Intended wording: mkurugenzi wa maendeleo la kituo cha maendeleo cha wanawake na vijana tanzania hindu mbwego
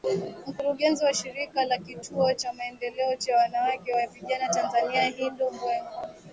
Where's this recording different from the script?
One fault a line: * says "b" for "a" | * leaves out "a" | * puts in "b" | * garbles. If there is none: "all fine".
* says "shirika" for "maendeleo"